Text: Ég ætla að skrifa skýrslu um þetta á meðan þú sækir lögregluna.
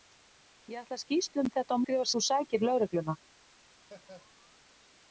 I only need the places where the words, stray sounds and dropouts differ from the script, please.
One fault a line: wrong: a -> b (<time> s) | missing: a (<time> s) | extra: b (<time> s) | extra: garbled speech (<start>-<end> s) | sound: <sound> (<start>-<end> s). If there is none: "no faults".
missing: skrifa (1.0 s)
wrong: meðan -> skrifa (1.8 s)
sound: laugh (3.8-4.9 s)